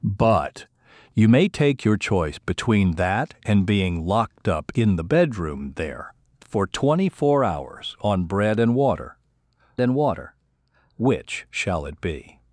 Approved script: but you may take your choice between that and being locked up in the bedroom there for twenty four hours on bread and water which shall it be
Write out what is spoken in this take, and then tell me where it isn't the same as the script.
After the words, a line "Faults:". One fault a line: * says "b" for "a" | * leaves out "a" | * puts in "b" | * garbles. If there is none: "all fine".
but you may take your choice between that and being locked up in the bedroom there for twenty four hours on bread and water and water which shall it be
Faults:
* puts in "and water"